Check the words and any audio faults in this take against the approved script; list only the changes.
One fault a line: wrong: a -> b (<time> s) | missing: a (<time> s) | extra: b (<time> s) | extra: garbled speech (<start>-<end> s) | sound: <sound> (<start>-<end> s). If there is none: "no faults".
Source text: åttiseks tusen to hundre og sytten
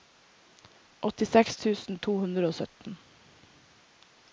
no faults